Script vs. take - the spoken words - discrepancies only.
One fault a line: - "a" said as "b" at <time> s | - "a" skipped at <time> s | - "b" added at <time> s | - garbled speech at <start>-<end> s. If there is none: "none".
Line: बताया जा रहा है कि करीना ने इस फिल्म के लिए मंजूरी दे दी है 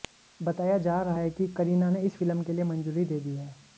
none